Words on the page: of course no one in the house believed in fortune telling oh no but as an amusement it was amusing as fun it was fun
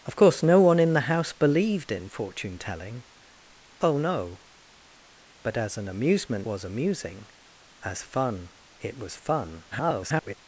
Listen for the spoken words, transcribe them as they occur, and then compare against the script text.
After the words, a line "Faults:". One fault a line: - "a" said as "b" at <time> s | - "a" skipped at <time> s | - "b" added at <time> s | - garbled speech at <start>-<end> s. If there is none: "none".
of course no one in the house believed in fortune telling oh no but as an amusement was amusing as fun it was fun [garbled]
Faults:
- "it" skipped at 6.5 s
- garbled speech at 9.7-10.3 s